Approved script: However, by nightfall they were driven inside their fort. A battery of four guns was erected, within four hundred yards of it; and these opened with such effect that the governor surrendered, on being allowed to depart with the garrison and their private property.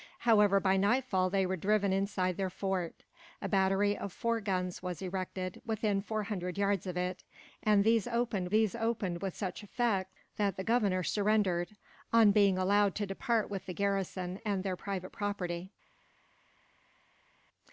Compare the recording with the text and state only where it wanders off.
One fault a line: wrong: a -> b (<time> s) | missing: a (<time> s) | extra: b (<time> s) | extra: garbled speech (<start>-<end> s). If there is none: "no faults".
extra: these opened (8.5 s)